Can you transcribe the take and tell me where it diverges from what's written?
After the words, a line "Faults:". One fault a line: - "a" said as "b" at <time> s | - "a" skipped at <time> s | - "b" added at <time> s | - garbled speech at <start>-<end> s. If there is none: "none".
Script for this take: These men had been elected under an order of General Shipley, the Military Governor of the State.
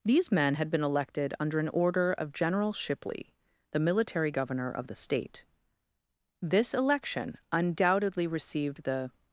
These men had been elected under an order of General Shipley, the Military Governor of the State. This election undoubtedly received the
Faults:
- "This election undoubtedly received the" added at 6.4 s